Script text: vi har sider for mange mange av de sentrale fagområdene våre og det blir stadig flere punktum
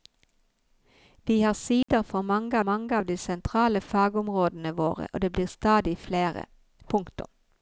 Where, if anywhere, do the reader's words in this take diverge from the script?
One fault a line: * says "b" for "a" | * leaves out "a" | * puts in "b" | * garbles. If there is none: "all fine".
all fine